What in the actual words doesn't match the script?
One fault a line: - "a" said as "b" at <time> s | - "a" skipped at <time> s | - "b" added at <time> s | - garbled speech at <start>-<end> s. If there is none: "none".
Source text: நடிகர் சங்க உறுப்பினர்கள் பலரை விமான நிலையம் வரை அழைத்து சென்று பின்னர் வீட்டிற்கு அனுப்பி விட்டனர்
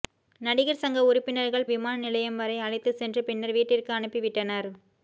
- "பலரை" skipped at 1.7 s